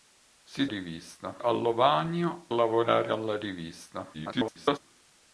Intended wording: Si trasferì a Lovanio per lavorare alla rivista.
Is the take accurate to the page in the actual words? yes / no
no